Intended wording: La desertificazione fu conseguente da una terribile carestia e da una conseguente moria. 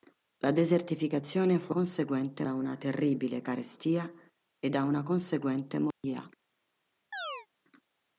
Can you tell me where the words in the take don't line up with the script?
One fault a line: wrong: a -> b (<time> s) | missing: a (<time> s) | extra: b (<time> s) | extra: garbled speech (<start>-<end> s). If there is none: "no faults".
no faults